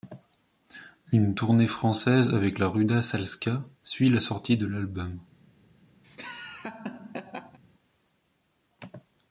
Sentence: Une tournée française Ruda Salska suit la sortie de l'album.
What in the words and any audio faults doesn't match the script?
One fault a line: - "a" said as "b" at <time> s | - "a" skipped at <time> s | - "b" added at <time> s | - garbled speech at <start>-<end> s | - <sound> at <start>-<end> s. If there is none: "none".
- "avec la" added at 2.3 s
- laugh at 6.0-7.6 s